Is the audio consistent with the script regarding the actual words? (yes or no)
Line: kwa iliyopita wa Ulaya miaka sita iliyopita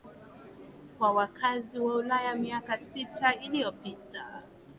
no